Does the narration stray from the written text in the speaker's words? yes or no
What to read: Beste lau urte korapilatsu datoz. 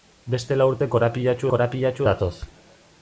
yes